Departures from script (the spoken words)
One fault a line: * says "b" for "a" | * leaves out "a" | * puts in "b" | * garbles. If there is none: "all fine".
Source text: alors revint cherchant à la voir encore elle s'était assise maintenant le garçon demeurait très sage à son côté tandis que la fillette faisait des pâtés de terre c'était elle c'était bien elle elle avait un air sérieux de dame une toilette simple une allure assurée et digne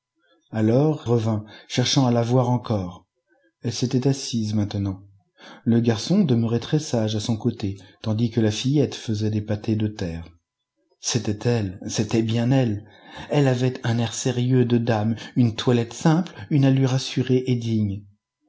all fine